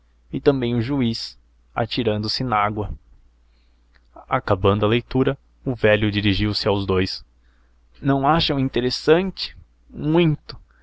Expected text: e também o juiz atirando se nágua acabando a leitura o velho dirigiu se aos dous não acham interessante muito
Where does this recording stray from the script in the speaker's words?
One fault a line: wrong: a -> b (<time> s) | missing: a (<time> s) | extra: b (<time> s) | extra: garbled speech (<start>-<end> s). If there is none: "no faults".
no faults